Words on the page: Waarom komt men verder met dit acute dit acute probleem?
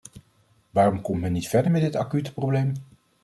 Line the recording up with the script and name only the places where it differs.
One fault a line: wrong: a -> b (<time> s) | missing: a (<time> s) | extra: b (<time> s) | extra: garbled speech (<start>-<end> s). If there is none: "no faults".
extra: niet (1.3 s)
missing: dit acute (2.3 s)